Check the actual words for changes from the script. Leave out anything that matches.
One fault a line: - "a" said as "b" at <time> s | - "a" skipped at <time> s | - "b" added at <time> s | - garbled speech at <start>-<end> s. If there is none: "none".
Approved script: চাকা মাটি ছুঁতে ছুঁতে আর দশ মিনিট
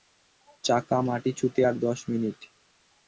- "ছুঁতে" skipped at 1.6 s